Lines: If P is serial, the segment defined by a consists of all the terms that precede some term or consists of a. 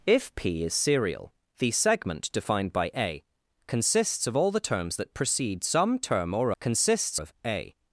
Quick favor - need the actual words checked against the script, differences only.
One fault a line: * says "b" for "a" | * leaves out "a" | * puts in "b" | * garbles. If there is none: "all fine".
all fine